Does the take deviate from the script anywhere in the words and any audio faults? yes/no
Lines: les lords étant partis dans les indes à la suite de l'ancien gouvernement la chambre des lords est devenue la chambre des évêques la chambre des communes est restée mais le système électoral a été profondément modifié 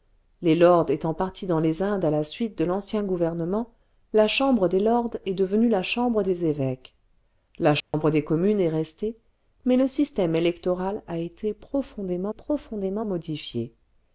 yes